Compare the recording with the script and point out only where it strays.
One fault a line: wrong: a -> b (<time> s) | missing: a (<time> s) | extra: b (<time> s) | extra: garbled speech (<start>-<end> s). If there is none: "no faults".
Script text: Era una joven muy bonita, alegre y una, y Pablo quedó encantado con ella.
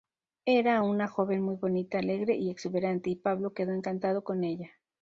wrong: una -> exuberante (2.5 s)